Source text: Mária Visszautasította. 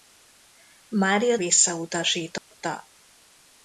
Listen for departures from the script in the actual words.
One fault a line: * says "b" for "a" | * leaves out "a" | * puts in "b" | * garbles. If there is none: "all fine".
all fine